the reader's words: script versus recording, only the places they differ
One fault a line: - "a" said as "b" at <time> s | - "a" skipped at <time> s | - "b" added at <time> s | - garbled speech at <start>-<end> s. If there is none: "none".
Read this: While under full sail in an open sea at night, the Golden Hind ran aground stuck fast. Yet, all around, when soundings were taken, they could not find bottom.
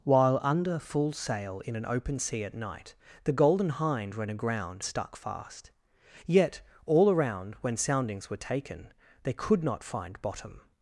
none